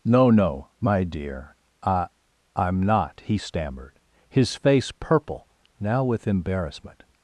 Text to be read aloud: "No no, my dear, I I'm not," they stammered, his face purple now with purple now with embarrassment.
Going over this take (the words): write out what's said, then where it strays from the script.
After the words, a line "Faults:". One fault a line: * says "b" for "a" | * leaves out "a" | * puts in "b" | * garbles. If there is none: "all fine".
"No no, my dear, I I'm not," he stammered, his face purple now with embarrassment.
Faults:
* says "he" for "they"
* leaves out "purple now with"